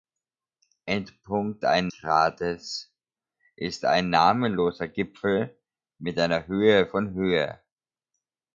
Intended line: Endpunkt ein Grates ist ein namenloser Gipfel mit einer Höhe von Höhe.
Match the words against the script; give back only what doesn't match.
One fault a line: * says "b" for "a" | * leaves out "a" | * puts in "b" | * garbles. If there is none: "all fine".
all fine